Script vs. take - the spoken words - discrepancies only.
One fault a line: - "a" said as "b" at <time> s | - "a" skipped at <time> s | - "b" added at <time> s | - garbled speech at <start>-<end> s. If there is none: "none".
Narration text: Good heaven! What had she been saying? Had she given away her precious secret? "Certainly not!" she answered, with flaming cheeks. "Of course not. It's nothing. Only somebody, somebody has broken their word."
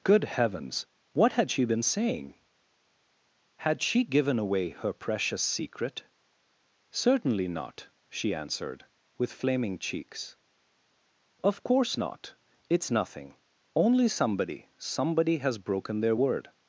- "heaven" said as "heavens" at 0.2 s